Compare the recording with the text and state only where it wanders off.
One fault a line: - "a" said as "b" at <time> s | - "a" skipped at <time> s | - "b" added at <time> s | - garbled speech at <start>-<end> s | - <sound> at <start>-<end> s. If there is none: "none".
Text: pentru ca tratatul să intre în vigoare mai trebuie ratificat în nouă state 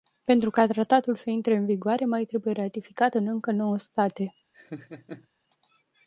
- "încă" added at 3.3 s
- laugh at 4.5-5.3 s